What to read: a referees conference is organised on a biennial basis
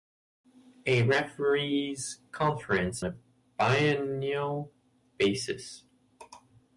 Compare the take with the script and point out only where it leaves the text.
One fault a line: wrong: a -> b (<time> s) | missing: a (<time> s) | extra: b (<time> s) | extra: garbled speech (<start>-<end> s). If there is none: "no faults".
missing: is organised on (3.0 s)